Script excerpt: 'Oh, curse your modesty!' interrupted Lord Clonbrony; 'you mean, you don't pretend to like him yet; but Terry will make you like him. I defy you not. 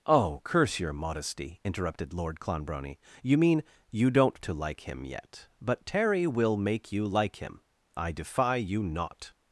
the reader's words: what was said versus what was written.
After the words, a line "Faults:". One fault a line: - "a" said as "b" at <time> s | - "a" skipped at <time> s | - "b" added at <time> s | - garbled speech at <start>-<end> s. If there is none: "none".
'Oh, curse your modesty!' interrupted Lord Clonbrony; 'you mean, you don't to like him yet; but Terry will make you like him. I defy you not.
Faults:
- "pretend" skipped at 4.4 s